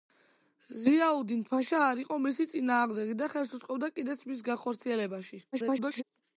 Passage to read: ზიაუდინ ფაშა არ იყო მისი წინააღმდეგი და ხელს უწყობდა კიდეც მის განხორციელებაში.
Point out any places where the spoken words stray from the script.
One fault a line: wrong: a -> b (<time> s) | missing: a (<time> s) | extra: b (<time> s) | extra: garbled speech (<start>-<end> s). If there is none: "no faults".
extra: garbled speech (5.5-6.0 s)